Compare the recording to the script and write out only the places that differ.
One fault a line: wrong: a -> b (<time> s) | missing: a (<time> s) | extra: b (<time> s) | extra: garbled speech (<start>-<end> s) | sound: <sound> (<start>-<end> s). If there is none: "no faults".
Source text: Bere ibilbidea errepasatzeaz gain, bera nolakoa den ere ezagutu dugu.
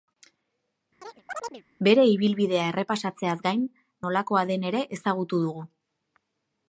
sound: chirp (1.0-1.6 s)
missing: bera (3.7 s)